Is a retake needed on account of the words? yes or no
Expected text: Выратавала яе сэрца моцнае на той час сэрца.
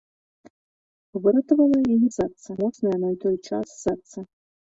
no